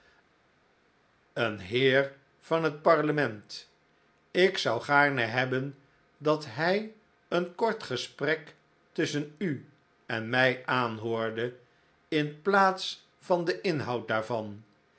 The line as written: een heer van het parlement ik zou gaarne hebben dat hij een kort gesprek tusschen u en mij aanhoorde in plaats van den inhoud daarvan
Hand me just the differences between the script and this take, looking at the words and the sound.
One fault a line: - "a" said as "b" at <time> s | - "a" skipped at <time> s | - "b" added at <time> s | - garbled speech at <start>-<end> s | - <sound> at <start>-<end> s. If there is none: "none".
none